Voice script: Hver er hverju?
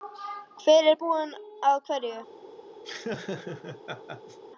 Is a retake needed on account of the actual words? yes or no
yes